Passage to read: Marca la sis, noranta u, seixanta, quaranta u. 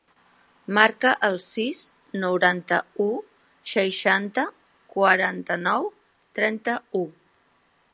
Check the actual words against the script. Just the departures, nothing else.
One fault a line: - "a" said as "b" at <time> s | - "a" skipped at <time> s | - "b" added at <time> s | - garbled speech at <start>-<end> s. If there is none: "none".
- "la" said as "el" at 1.3 s
- "nou trenta" added at 5.7 s